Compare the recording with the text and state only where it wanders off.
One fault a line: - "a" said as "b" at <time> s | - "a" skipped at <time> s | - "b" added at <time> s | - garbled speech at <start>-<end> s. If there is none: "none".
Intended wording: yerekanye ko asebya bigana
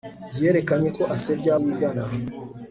none